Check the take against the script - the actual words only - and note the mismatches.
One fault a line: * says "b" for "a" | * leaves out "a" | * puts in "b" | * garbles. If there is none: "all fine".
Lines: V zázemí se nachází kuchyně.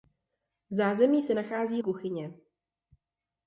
all fine